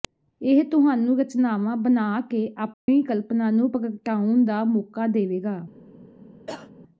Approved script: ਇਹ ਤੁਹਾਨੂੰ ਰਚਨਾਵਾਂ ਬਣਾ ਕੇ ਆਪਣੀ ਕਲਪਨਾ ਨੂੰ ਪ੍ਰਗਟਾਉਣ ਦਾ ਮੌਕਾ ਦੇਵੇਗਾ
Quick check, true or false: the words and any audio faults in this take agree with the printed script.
false